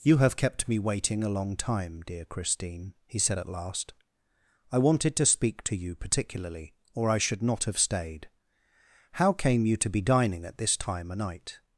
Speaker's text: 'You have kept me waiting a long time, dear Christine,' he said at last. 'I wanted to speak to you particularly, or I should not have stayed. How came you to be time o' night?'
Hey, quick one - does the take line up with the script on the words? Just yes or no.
no